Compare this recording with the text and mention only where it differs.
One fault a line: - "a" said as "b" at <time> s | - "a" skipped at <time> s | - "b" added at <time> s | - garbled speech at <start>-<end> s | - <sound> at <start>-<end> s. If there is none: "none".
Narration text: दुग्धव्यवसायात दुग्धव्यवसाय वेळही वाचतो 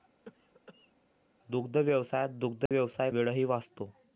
- cough at 0.3-0.9 s
- dropout at 2.7-2.7 s